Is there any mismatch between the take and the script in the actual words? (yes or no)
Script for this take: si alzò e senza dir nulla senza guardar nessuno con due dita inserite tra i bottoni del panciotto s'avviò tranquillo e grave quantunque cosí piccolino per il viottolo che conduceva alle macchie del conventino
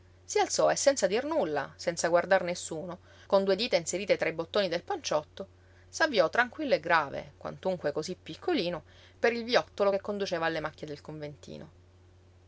no